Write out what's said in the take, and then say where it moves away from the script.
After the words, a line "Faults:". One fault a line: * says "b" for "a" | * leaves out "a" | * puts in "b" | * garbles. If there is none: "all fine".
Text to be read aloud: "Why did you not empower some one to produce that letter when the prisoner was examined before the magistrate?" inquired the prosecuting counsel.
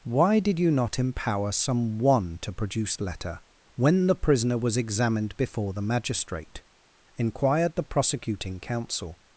"Why did you not empower some one to produce letter when the prisoner was examined before the magistrate?" inquired the prosecuting counsel.
Faults:
* leaves out "that"